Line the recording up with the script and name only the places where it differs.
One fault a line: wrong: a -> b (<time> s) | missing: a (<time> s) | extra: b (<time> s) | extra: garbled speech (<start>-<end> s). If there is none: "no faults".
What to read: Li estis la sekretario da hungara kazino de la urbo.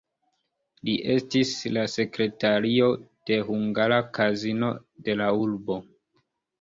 wrong: da -> de (3.3 s)